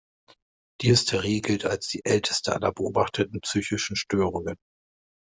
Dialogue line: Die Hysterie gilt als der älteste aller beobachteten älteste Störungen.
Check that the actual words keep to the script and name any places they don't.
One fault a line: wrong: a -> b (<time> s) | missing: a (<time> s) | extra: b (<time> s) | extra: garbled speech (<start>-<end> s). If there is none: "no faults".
wrong: der -> die (1.9 s)
wrong: älteste -> psychischen (3.4 s)